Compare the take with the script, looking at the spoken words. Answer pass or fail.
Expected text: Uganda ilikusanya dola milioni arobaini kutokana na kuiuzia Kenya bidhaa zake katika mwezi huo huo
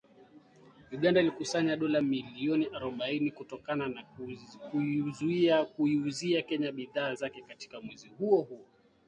pass